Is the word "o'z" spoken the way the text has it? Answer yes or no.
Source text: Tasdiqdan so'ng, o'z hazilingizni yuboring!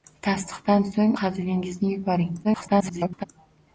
no